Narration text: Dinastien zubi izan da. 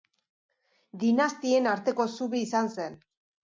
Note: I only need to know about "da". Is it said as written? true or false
false